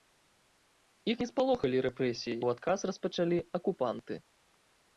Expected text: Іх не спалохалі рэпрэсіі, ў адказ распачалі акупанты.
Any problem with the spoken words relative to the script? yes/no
no